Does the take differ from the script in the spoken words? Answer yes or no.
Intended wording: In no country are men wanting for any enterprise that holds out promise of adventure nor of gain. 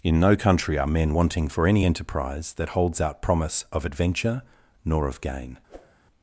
no